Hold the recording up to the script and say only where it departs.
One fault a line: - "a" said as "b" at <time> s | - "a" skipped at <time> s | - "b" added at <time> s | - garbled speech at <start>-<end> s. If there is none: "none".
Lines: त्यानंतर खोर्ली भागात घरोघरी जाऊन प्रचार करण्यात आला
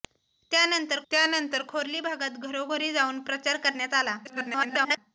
- "त्यानंतर" added at 1.1 s
- garbled speech at 4.2-5.0 s